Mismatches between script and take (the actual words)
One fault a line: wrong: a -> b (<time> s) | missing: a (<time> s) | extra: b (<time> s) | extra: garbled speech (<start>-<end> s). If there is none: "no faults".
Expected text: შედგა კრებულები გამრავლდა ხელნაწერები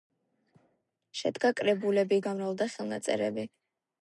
no faults